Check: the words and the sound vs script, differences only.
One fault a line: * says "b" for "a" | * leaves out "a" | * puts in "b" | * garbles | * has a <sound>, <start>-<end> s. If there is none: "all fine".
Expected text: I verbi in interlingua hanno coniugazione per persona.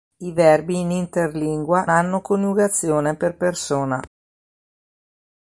all fine